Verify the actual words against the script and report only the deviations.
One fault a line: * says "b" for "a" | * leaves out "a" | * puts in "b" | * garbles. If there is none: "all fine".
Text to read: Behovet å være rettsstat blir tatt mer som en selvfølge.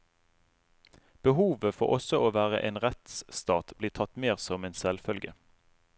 * puts in "for også"
* puts in "en"